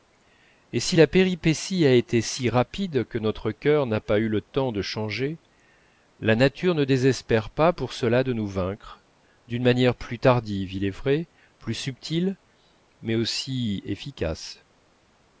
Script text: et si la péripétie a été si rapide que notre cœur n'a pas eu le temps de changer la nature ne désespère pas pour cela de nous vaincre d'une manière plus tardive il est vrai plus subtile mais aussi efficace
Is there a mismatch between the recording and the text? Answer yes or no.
no